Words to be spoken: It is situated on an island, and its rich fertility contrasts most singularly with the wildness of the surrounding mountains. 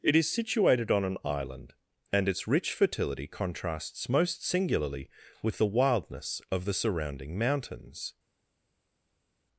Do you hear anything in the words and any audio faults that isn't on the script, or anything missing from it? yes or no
no